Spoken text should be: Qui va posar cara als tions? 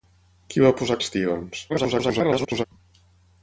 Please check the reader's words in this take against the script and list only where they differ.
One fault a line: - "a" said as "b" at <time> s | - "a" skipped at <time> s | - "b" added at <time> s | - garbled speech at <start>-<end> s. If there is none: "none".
- "cara" skipped at 1.0 s
- garbled speech at 1.7-2.6 s